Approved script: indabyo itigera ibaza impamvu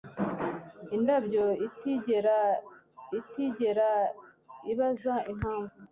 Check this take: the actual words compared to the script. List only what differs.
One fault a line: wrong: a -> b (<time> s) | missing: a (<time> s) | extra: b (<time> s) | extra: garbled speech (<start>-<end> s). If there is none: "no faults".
extra: itigera (3.2 s)